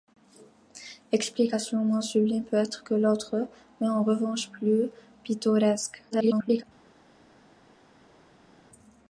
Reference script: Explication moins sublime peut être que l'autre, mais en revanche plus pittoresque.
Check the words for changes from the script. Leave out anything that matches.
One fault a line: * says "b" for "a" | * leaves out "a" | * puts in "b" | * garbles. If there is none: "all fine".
* garbles